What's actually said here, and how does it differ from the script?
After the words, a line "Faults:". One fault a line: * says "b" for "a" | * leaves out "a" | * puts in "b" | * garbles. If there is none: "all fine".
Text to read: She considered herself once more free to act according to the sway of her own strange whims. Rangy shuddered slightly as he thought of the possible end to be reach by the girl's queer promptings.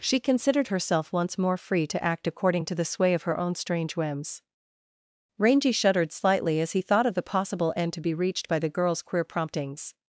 She considered herself once more free to act according to the sway of her own strange whims. Rangy shuddered slightly as he thought of the possible end to be reached by the girl's queer promptings.
Faults:
* says "reached" for "reach"